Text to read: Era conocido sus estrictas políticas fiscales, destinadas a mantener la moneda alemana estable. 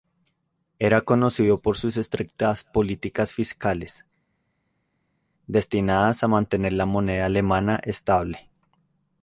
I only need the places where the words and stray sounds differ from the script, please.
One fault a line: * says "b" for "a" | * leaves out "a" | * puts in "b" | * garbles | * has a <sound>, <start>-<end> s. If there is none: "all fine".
* puts in "por"